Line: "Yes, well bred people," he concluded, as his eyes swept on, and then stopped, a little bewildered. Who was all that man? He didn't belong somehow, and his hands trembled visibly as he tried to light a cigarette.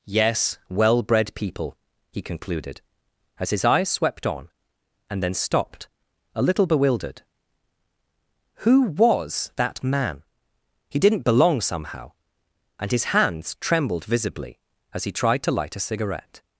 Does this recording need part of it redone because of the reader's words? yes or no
yes